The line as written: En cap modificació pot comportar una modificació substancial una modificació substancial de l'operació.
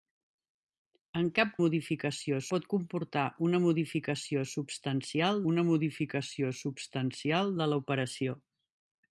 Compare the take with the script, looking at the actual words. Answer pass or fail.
pass